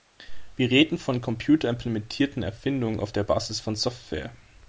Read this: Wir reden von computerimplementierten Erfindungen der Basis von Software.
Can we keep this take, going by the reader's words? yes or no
no